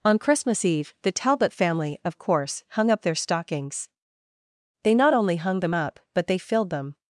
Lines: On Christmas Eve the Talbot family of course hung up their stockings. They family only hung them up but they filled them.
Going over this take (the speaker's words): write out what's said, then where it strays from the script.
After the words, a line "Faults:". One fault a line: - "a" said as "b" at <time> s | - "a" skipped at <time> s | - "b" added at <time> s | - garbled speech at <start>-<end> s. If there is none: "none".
On Christmas Eve the Talbot family of course hung up their stockings. They not only hung them up but they filled them.
Faults:
- "family" said as "not" at 5.0 s